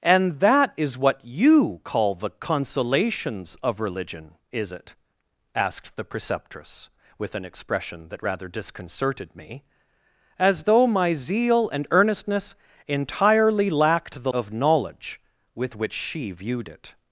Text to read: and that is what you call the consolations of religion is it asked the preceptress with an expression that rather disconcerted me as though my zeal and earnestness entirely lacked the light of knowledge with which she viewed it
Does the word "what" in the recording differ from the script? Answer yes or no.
no